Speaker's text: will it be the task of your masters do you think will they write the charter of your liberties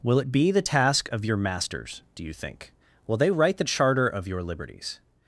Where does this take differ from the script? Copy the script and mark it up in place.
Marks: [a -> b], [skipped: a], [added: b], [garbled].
will it be the task of your masters do you think will they write the charter of your liberties